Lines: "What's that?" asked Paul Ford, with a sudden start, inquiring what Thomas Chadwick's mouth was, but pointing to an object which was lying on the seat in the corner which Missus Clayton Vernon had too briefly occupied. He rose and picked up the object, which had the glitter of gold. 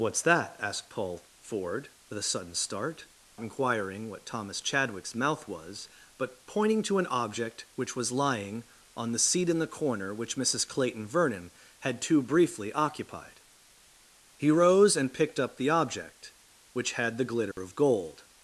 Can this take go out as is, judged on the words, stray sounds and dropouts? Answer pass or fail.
fail